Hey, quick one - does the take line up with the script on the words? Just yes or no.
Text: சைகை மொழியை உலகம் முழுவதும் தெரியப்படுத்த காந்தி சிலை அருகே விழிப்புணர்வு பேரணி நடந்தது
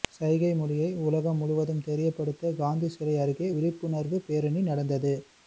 yes